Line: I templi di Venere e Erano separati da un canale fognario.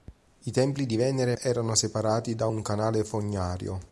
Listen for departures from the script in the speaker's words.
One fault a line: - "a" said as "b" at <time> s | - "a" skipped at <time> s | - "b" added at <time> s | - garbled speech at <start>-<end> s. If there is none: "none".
none